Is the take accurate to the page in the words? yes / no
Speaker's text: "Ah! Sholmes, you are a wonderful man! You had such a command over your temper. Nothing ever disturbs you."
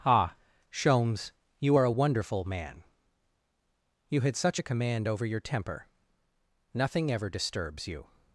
yes